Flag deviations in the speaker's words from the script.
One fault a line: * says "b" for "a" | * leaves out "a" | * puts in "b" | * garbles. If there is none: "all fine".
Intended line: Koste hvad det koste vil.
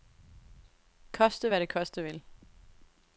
all fine